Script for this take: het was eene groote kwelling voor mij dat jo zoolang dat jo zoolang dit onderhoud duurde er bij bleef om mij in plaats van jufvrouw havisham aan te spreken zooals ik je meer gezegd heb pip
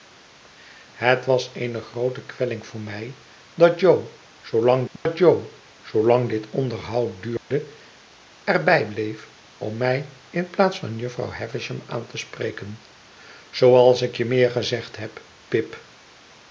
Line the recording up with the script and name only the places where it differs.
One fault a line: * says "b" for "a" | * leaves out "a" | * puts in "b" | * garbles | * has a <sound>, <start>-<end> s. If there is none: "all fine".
* has a dropout, 5.0-5.1 s
* has a dropout, 7.4-7.5 s